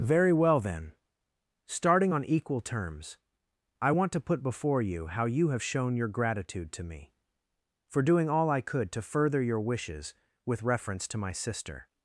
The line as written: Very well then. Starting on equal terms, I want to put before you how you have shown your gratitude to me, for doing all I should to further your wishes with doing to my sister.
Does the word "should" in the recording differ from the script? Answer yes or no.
yes